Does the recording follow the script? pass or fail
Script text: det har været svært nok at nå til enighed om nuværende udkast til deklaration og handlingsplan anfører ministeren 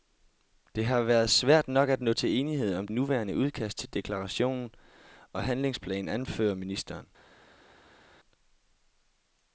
pass